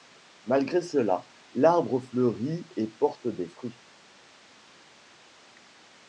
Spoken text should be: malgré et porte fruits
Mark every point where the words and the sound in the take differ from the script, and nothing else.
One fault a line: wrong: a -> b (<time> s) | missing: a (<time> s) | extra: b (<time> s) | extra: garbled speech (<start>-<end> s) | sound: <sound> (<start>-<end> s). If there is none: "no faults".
extra: cela l'arbre fleurit (0.8 s)
extra: des (3.3 s)